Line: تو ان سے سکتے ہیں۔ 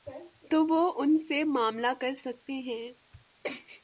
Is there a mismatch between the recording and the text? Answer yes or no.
yes